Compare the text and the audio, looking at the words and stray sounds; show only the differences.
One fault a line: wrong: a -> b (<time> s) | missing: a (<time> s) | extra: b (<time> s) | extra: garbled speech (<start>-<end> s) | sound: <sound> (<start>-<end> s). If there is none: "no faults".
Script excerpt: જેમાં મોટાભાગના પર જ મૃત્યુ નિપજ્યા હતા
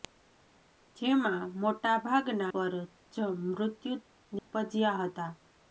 sound: dropout (4.4-4.5 s)